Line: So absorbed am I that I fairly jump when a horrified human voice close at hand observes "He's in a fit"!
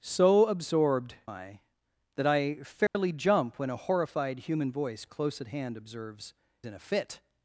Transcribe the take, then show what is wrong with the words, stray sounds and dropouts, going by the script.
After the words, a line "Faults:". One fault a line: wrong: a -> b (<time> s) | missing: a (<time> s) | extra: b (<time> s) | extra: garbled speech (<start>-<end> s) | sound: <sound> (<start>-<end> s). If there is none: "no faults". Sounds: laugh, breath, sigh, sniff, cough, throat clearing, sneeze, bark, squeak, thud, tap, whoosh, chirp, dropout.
So absorbed I that I fairly jump when a horrified human voice close at hand observes "In a fit"!
Faults:
missing: am (1.1 s)
sound: dropout (2.9-2.9 s)
missing: He's (6.3 s)